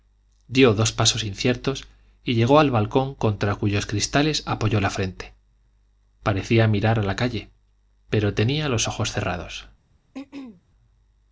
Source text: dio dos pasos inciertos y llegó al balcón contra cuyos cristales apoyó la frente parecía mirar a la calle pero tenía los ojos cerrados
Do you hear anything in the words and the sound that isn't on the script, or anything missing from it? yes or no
yes